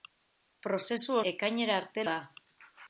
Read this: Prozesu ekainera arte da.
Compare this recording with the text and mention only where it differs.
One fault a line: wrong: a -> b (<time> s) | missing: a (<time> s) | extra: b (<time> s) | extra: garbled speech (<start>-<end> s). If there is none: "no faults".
no faults